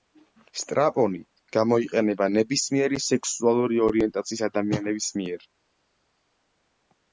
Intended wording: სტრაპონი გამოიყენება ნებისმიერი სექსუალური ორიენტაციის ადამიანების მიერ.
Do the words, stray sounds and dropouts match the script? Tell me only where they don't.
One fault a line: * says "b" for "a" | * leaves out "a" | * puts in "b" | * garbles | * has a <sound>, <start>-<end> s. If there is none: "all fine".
all fine